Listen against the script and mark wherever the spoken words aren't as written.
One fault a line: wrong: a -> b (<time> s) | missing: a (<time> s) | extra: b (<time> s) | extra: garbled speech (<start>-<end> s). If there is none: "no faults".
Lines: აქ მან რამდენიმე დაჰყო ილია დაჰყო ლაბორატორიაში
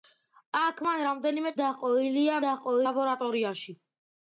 no faults